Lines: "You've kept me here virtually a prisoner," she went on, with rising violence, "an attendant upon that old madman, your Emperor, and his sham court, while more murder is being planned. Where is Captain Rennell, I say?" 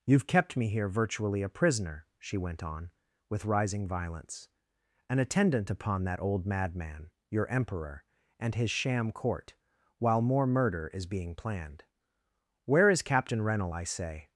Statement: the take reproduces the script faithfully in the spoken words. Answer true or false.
true